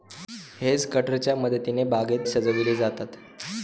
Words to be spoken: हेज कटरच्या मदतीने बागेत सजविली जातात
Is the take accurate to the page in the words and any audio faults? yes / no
yes